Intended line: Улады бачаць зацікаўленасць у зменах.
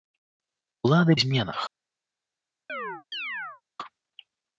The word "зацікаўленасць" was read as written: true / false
false